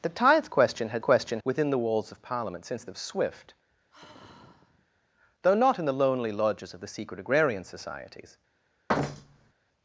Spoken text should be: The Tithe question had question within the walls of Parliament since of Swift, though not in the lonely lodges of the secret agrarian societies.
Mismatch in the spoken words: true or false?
false